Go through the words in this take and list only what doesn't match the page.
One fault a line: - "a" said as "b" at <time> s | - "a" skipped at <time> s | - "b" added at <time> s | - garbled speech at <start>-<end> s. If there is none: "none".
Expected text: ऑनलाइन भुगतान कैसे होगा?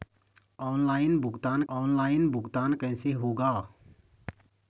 - "ऑनलाइन भुगतान" added at 1.7 s